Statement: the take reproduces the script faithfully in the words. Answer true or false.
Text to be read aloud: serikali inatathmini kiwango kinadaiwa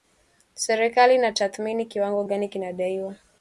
false